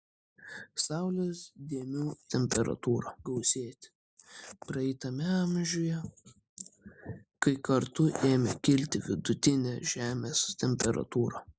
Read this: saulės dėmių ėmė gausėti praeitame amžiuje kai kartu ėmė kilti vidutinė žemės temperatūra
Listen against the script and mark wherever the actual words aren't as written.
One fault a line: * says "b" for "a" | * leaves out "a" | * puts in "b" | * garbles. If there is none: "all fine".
* says "temperatūra" for "ėmė"